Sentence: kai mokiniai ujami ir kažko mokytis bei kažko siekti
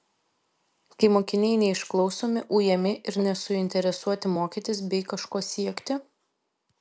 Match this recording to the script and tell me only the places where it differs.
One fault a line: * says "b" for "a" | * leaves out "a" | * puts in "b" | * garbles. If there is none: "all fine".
* puts in "neišklausomi"
* says "nesuinteresuoti" for "kažko"